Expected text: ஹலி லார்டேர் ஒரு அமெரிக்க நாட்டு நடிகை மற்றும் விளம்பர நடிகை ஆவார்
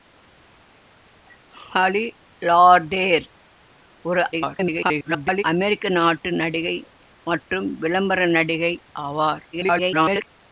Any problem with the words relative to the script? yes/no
yes